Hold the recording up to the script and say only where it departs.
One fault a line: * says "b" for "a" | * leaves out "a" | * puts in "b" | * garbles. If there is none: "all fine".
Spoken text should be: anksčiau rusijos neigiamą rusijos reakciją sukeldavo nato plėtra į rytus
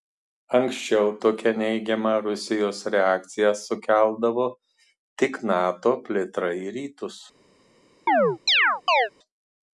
* says "tokią" for "rusijos"
* puts in "tik"